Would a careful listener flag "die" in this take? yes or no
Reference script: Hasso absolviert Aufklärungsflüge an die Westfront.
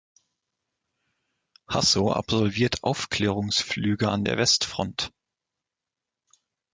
yes